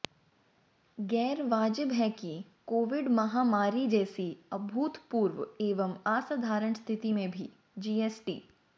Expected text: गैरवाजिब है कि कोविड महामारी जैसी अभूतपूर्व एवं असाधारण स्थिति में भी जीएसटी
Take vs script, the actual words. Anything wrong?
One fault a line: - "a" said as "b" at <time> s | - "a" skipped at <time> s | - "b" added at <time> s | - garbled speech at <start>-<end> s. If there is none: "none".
none